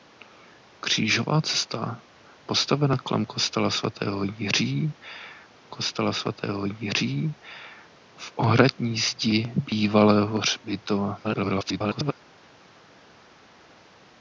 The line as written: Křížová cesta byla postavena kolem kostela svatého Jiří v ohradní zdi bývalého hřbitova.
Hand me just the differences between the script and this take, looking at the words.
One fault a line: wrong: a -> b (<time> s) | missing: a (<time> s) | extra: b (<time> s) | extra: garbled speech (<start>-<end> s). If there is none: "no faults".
missing: byla (2.0 s)
extra: kostela svatého Jiří (5.7 s)
extra: garbled speech (11.2-12.1 s)